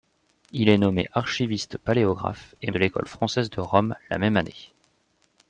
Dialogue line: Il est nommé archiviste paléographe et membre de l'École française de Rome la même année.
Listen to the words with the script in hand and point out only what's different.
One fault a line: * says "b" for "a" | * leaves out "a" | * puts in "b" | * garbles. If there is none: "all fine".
* leaves out "membre"